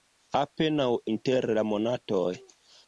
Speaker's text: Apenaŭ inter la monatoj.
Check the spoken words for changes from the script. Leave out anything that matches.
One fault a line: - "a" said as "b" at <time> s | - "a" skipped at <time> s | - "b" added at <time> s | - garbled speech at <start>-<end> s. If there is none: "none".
none